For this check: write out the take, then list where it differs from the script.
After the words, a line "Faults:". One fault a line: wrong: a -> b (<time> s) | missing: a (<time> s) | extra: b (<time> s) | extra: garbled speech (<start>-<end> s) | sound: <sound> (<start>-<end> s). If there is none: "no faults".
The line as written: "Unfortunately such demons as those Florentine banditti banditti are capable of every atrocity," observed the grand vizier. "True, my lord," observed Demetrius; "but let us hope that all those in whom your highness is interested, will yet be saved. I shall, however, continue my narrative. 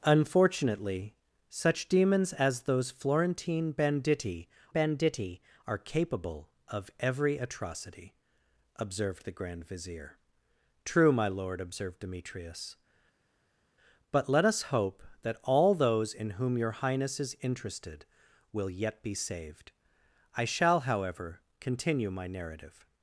"Unfortunately such demons as those Florentine banditti banditti are capable of every atrocity," observed the grand vizier. "True, my lord," observed Demetrius; "but let us hope that all those in whom your highness is interested, will yet be saved. I shall, however, continue my narrative.
Faults:
no faults